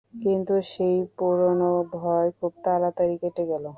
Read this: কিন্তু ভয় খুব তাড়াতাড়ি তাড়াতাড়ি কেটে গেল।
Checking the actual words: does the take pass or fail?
fail